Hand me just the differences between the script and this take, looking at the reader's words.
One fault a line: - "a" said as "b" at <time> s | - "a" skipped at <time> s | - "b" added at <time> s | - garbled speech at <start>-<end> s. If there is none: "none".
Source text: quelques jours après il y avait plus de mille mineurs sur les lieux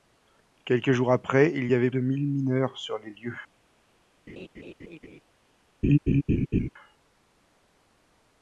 - "plus" skipped at 1.9 s